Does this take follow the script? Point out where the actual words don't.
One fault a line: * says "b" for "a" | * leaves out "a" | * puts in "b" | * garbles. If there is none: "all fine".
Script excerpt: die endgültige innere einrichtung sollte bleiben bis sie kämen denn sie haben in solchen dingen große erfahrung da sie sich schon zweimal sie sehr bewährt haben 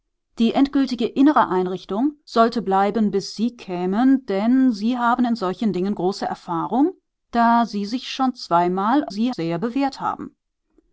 all fine